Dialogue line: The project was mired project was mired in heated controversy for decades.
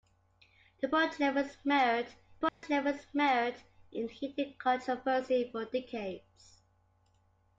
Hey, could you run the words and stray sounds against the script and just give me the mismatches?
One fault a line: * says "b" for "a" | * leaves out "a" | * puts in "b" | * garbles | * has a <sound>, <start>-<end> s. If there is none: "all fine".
* has a dropout, 2.5-2.6 s